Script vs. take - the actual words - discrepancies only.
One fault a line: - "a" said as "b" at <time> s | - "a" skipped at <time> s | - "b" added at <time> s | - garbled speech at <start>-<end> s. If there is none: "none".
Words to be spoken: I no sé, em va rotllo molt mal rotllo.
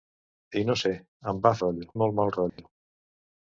none